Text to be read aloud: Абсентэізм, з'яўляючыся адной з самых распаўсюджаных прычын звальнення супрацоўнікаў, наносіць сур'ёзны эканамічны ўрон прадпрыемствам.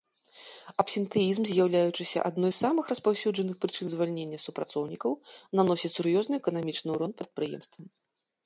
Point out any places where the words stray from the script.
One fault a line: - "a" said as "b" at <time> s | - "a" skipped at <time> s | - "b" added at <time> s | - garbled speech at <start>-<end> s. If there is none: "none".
none